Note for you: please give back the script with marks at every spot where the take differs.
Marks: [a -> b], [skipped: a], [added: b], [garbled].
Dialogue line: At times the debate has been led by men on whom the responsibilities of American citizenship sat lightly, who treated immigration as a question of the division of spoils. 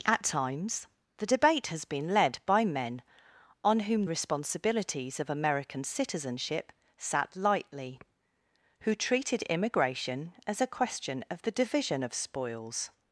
At times the debate has been led by men on whom [skipped: the] responsibilities of American citizenship sat lightly, who treated immigration as a question of the division of spoils.